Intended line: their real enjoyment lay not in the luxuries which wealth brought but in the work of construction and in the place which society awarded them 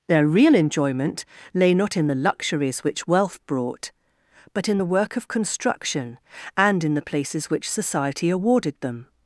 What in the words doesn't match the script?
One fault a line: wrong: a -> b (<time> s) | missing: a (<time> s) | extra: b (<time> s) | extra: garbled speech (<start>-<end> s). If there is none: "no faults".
wrong: place -> places (7.0 s)